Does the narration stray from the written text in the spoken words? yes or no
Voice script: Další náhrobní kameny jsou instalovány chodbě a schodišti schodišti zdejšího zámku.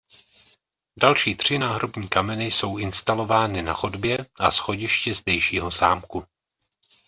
yes